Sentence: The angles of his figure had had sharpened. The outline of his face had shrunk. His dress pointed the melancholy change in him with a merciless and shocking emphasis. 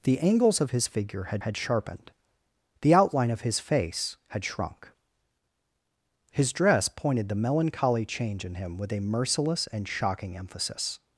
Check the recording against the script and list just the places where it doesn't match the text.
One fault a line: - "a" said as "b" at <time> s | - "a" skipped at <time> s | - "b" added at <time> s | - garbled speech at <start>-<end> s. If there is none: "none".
none